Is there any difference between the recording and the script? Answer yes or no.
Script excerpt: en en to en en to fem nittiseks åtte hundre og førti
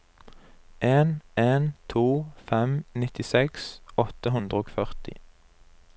yes